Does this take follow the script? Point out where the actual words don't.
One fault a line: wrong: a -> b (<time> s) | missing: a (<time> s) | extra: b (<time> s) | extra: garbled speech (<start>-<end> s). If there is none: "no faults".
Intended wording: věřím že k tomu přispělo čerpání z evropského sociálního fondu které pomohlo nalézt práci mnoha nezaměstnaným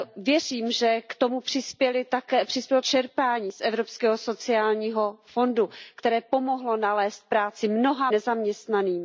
no faults